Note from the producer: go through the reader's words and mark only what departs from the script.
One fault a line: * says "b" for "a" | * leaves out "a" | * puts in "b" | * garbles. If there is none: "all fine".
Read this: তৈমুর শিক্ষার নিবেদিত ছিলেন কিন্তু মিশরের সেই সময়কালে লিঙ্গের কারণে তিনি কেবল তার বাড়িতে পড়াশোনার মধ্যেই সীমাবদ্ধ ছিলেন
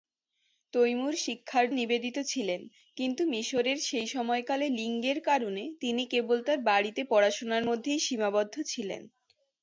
all fine